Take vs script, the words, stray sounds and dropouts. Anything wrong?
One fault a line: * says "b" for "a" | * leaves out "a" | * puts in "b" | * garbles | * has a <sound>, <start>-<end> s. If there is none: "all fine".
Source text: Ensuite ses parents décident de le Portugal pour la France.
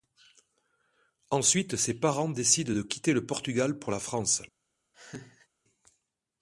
* puts in "quitter"
* has a laugh, 4.9-5.5 s